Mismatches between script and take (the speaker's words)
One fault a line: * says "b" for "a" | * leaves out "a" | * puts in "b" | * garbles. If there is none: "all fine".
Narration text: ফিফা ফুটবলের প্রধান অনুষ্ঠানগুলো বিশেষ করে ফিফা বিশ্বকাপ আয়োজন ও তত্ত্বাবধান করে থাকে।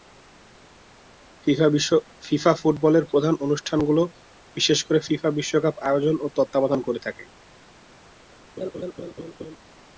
all fine